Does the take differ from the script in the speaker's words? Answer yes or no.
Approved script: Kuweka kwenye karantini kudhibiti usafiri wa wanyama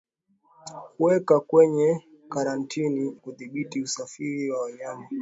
no